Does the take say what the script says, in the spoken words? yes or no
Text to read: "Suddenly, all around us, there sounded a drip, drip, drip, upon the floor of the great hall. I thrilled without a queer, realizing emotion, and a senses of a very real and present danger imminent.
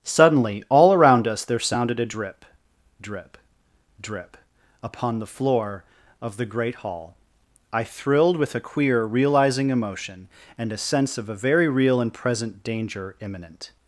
no